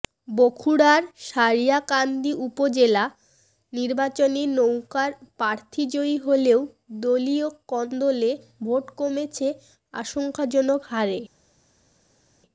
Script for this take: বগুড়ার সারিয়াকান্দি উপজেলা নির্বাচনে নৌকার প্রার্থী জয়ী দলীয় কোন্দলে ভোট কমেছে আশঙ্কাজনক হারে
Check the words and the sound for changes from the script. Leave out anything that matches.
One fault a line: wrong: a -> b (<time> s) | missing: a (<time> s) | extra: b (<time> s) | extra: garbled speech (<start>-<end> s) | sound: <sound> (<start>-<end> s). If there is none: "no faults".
extra: হলেও (6.2 s)